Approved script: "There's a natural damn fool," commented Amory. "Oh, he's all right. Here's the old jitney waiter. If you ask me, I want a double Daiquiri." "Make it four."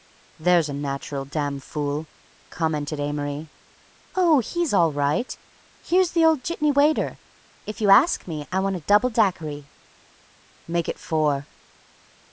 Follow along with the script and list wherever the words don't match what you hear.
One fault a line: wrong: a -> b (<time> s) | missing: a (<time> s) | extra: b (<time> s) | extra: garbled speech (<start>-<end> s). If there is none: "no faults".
no faults